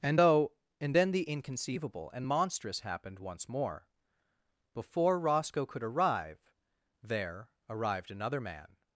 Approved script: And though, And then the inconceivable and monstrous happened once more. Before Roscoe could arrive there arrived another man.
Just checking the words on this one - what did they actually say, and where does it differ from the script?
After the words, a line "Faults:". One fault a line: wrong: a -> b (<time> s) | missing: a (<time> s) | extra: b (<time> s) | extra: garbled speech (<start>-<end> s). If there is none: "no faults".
And though, And then the inconceivable and monstrous happened once more. Before Roscoe could arrive there arrived another man.
Faults:
no faults